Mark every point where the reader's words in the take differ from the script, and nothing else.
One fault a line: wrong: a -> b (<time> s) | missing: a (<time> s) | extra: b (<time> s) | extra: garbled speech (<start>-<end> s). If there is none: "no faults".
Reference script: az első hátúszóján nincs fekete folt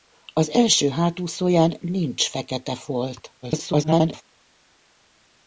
extra: garbled speech (3.4-4.2 s)